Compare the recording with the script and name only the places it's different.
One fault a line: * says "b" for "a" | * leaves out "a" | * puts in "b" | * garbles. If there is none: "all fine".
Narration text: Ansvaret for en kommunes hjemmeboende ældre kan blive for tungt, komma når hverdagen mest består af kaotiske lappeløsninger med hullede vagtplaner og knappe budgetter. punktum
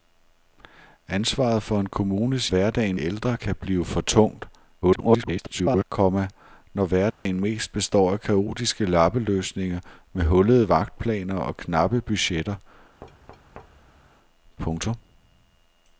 * says "hverdagen" for "hjemmeboende"
* garbles